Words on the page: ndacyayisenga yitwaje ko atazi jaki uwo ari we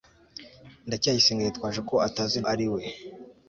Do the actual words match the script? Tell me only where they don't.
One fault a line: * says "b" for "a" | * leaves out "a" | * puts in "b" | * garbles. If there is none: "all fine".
* leaves out "jaki uwo"